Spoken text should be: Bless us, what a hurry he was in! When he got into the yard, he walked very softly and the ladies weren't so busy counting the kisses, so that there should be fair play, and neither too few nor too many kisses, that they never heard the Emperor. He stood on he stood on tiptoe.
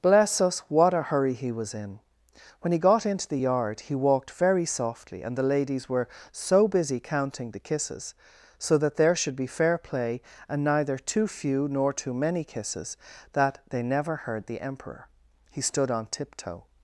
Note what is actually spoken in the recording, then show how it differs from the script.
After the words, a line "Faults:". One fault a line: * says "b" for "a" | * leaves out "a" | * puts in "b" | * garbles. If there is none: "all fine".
Bless us, what a hurry he was in! When he got into the yard, he walked very softly and the ladies were so busy counting the kisses, so that there should be fair play, and neither too few nor too many kisses, that they never heard the Emperor. He stood on tiptoe.
Faults:
* says "were" for "weren't"
* leaves out "he stood on"